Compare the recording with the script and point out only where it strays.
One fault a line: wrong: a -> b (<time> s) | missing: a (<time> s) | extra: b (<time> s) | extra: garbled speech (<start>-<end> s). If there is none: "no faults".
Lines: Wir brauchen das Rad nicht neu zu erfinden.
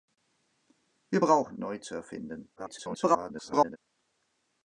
missing: das Rad nicht (1.6 s)
extra: garbled speech (2.6-3.8 s)